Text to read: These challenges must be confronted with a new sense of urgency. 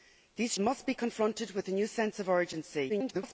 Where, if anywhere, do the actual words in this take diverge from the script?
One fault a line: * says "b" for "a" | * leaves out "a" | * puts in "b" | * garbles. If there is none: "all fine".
* leaves out "challenges"
* garbles